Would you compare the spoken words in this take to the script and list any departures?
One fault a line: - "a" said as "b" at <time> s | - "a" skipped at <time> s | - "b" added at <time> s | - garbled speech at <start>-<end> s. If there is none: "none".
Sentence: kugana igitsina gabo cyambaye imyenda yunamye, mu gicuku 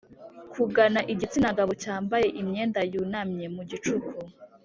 none